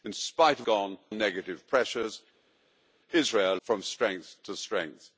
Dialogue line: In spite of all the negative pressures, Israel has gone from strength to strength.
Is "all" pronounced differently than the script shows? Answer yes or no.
yes